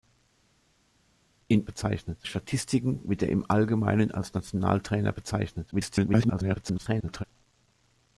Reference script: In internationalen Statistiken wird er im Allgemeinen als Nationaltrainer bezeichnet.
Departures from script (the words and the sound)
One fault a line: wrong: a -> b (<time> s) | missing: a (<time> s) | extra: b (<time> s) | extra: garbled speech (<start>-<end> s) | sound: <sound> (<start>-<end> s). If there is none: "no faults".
wrong: internationalen -> bezeichnet (1.6 s)
extra: garbled speech (5.7-7.2 s)